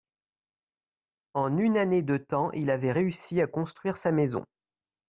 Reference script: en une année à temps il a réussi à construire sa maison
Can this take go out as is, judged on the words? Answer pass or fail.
fail